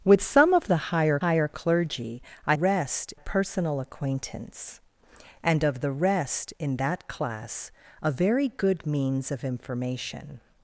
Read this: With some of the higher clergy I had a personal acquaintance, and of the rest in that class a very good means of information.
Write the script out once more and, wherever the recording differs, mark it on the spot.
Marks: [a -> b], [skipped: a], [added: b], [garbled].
With some of the higher [added: higher] clergy I [had -> rest] a personal acquaintance, and of the rest in that class a very good means of information.